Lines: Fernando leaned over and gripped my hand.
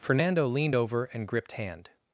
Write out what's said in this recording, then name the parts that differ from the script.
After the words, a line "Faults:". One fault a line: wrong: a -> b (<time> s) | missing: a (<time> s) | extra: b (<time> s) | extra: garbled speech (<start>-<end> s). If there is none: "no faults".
Fernando leaned over and gripped hand.
Faults:
missing: my (1.5 s)